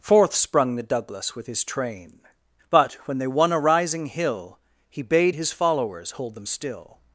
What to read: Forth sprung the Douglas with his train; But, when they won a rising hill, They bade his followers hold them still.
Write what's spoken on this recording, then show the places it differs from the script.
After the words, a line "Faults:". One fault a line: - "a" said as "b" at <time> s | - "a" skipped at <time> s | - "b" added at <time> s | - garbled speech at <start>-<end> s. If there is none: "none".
Forth sprung the Douglas with his train; But, when they won a rising hill, He bade his followers hold them still.
Faults:
- "They" said as "He" at 4.9 s